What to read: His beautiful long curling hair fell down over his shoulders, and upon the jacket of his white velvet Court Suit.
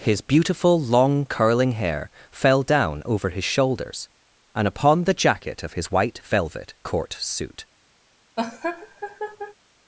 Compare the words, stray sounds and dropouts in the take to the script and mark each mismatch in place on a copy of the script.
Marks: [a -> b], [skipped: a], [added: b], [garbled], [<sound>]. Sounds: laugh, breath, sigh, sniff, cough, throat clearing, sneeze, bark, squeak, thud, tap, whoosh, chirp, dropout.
His beautiful long curling hair fell down over his shoulders, and upon the jacket of his white velvet Court Suit. [laugh]